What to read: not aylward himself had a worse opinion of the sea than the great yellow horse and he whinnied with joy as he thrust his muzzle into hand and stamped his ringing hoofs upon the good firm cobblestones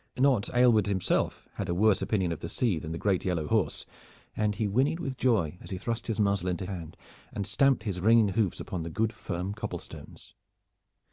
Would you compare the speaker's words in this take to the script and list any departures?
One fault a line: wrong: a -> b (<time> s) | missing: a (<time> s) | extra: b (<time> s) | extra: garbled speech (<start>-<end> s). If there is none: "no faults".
no faults